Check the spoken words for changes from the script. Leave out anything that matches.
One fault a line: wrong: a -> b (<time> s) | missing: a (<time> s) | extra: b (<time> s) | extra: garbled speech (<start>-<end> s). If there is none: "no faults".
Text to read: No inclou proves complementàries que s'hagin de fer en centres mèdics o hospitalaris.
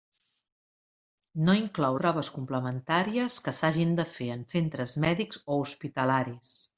no faults